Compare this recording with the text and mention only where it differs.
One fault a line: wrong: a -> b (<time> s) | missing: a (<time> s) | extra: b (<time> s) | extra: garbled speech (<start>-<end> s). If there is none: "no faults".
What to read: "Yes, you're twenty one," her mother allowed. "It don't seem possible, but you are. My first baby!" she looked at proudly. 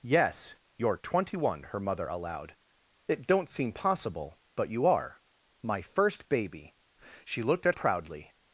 no faults